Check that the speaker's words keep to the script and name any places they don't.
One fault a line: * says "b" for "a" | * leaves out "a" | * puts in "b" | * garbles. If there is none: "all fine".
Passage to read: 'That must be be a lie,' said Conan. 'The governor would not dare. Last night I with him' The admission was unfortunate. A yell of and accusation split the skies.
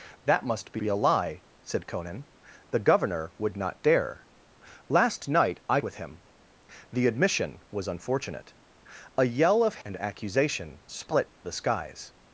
all fine